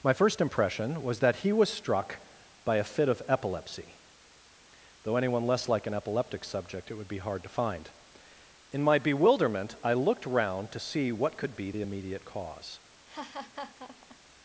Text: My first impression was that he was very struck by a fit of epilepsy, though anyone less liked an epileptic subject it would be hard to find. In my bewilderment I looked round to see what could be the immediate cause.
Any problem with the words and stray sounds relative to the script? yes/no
yes